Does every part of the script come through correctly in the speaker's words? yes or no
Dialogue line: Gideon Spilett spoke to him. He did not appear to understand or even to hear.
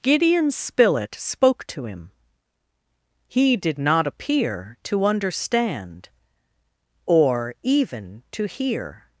yes